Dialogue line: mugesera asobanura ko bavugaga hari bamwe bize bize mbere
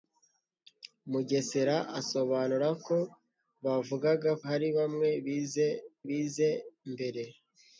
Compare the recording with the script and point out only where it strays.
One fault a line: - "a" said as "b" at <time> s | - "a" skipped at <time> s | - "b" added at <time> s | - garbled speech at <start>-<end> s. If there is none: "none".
none